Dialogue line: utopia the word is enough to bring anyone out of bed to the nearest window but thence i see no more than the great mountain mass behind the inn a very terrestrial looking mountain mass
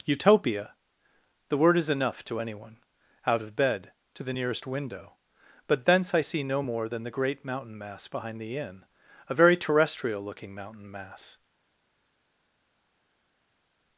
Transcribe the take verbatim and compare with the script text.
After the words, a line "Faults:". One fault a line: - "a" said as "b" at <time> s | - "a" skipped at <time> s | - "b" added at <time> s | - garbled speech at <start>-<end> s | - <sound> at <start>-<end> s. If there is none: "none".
utopia the word is enough to anyone out of bed to the nearest window but thence i see no more than the great mountain mass behind the inn a very terrestrial looking mountain mass
Faults:
- "bring" skipped at 2.4 s